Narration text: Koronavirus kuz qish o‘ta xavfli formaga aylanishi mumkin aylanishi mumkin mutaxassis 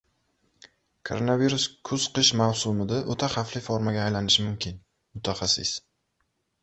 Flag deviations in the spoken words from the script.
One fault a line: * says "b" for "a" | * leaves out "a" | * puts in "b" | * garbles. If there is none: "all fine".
* puts in "mavsumida"
* leaves out "aylanishi mumkin"